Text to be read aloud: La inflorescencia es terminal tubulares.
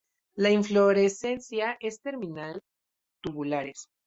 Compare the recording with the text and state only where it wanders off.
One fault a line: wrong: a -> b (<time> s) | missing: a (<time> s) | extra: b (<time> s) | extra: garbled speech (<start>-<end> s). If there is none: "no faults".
no faults